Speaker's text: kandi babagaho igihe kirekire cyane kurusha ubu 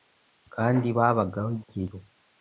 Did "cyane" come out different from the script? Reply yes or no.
yes